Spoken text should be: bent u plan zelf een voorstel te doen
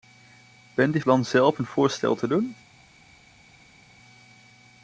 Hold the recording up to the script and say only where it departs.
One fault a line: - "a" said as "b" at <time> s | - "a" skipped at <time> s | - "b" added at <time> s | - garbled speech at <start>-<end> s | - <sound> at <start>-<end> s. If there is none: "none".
none